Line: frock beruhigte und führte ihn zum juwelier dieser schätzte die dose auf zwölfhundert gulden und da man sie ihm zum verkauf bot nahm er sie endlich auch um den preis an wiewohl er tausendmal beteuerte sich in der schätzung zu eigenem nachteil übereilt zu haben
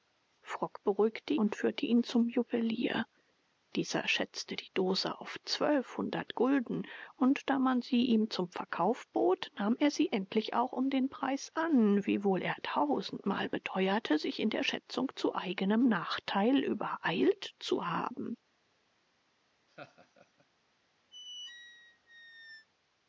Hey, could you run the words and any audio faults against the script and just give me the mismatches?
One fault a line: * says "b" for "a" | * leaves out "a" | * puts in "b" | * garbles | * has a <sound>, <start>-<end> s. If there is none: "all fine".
* has a laugh, 19.7-20.5 s
* has a squeak, 21.1-22.7 s